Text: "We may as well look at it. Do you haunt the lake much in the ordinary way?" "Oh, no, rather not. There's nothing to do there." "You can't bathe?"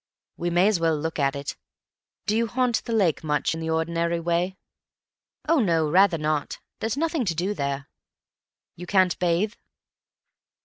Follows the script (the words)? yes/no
yes